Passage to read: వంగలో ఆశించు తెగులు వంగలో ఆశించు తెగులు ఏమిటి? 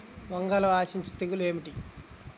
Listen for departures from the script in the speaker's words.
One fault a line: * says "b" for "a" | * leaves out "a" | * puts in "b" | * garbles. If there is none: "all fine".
* leaves out "వంగలో ఆశించు తెగులు"